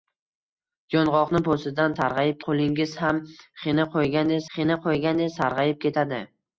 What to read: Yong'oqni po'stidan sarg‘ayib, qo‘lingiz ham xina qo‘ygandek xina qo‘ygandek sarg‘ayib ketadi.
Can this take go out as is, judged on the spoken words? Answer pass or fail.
pass